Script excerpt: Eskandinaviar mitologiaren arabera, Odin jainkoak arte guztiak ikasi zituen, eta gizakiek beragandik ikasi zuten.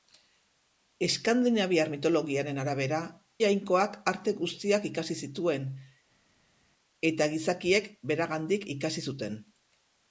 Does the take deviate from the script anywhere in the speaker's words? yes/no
yes